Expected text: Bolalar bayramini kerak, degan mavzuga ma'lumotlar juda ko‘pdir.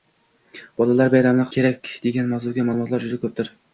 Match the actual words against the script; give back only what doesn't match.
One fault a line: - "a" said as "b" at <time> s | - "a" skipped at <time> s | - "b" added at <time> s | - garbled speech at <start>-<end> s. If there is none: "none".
none